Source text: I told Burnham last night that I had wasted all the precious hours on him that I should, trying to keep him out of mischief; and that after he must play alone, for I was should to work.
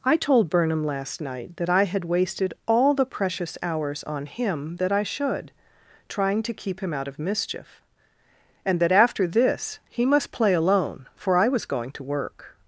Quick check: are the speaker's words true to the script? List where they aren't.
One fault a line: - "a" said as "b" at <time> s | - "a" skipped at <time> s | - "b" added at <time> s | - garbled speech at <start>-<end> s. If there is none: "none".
- "this" added at 9.3 s
- "should" said as "going" at 11.6 s